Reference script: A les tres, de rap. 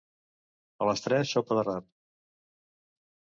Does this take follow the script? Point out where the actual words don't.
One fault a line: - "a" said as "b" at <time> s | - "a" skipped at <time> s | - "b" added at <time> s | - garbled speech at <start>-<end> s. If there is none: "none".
- "sopa" added at 1.4 s